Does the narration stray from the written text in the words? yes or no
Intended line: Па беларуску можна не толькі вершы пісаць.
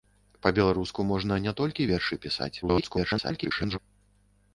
yes